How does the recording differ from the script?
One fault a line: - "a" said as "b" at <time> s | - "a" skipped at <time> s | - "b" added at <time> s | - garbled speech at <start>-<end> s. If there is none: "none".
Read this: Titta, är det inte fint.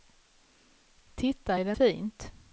- "inte" skipped at 1.7 s